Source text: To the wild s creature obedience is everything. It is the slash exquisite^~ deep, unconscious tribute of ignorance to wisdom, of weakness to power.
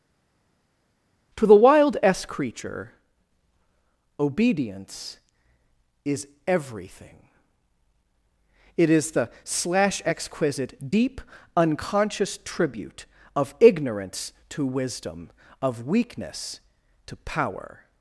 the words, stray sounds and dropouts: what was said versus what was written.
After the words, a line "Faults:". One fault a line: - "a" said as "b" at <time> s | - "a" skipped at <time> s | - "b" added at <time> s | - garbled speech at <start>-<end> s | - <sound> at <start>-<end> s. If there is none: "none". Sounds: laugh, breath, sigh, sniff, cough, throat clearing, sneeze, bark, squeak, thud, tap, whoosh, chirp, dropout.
To the wild s creature obedience is everything. It is the slash exquisite^~ deep, unconscious tribute of ignorance to wisdom, of weakness to power.
Faults:
none